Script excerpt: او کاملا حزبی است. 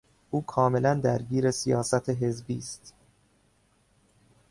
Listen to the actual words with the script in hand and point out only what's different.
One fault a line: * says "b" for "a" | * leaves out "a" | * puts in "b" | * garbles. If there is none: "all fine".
* puts in "درگیر سیاست"